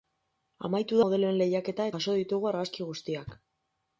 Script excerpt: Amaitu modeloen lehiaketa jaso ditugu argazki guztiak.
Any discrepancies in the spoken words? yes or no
no